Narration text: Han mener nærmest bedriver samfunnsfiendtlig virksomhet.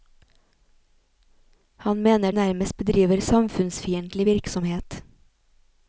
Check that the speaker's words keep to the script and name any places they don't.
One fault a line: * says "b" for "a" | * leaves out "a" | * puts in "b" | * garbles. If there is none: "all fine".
all fine